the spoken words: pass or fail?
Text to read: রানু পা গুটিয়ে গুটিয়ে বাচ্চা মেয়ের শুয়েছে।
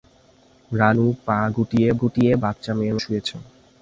pass